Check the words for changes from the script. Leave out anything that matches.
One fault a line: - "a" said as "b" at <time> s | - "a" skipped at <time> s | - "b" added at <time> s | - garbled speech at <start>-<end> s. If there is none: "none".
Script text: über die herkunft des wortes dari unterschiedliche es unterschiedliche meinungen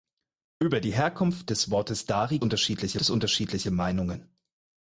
none